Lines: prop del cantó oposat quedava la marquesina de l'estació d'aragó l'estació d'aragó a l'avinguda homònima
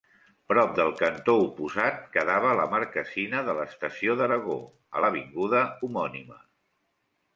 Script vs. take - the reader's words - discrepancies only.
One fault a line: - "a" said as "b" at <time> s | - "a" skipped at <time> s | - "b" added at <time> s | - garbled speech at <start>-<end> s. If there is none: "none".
- "l'estació d'aragó" skipped at 4.6 s